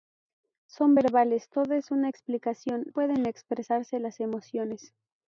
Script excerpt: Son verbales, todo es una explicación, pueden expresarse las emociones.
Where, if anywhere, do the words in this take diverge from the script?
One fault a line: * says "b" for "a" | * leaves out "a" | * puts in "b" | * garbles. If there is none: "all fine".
all fine